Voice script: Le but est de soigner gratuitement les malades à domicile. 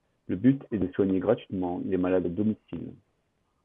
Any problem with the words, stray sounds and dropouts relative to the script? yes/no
no